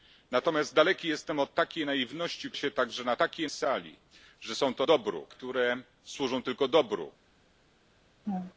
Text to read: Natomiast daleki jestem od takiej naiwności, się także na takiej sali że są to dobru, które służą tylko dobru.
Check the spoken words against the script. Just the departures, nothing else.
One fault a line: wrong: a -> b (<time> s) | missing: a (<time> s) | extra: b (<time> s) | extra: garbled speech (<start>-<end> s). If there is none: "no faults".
no faults